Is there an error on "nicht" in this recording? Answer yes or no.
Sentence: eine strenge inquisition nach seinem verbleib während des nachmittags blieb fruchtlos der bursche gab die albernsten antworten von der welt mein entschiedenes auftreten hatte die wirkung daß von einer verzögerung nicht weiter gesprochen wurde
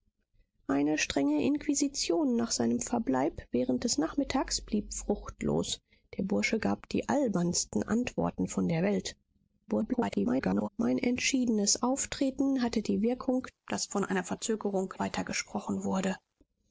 yes